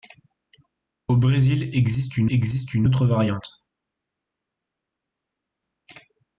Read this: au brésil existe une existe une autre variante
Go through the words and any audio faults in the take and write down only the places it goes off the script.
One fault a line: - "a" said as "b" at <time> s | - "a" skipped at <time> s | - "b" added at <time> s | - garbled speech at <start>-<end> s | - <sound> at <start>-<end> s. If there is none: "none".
none